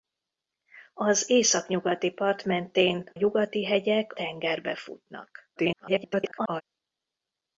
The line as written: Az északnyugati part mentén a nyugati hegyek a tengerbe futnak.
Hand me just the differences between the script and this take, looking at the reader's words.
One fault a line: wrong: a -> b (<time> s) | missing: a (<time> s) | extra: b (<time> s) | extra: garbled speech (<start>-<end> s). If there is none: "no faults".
missing: a (3.1 s)
missing: a (4.1 s)
extra: garbled speech (5.6-6.6 s)